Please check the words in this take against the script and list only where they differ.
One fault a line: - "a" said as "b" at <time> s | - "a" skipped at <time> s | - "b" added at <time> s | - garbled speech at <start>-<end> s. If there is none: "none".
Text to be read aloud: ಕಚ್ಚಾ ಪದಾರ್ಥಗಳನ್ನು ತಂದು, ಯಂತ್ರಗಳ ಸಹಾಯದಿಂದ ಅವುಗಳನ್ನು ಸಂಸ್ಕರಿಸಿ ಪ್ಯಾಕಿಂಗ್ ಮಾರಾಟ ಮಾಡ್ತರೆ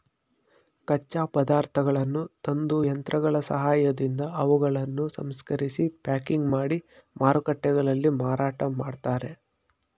- "ಮಾಡಿ ಮಾರುಕಟ್ಟೆಗಳಲ್ಲಿ" added at 6.5 s